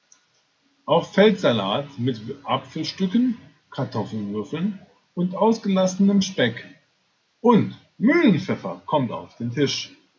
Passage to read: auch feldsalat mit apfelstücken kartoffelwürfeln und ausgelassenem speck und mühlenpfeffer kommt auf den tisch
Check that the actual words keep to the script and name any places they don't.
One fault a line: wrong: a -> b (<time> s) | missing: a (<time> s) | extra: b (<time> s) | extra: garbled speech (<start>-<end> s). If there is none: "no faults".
no faults